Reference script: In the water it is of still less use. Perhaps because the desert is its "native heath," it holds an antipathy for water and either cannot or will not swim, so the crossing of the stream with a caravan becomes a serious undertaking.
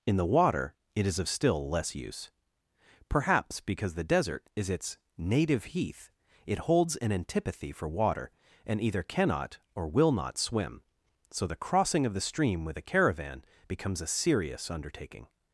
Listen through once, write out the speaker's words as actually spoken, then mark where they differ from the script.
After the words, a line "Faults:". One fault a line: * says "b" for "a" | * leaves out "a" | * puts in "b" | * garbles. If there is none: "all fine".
In the water it is of still less use. Perhaps because the desert is its "native heath," it holds an antipathy for water and either cannot or will not swim, so the crossing of the stream with a caravan becomes a serious undertaking.
Faults:
all fine